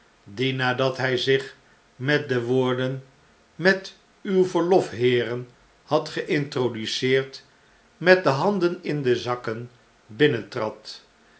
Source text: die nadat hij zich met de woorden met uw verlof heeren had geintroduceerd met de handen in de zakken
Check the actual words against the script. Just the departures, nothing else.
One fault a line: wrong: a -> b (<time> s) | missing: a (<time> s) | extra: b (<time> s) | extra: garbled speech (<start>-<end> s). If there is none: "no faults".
no faults